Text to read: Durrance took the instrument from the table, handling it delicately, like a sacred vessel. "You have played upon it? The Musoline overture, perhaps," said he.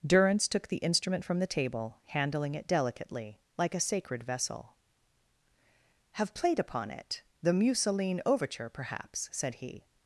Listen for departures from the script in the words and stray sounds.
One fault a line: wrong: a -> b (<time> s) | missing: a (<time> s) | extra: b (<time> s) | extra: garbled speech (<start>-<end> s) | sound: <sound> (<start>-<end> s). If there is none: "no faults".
missing: You (4.8 s)